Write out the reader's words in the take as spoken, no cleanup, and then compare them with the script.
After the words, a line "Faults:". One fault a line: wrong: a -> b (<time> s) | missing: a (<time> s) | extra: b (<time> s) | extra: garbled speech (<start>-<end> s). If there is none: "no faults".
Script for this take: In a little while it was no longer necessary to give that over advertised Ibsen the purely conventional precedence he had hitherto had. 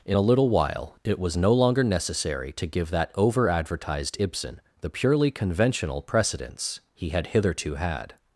In a little while it was no longer necessary to give that over advertised Ibsen the purely conventional precedence he had hitherto had.
Faults:
no faults